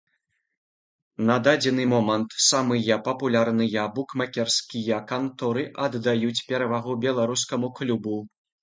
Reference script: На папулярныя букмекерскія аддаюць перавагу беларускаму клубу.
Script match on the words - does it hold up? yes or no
no